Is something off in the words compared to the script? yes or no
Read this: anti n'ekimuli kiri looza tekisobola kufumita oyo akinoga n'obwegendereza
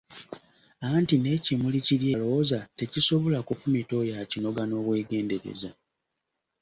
no